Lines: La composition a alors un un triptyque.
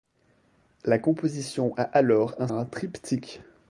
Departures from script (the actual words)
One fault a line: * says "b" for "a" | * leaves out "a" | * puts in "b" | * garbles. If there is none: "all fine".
all fine